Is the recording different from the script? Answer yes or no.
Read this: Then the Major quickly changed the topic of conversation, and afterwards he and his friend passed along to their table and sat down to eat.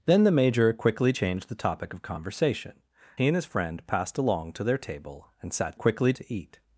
yes